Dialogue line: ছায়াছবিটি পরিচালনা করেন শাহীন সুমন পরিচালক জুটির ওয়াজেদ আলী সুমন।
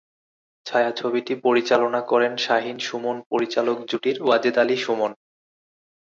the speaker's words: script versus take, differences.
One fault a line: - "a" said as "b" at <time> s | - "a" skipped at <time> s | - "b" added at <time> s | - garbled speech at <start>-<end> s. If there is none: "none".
none